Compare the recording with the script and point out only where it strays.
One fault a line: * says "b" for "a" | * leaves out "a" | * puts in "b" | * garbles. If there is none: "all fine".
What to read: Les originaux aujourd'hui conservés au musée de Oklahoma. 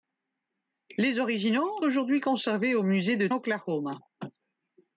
all fine